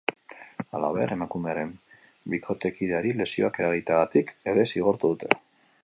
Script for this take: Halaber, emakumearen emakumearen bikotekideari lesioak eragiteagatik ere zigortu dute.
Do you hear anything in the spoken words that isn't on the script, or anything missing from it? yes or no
yes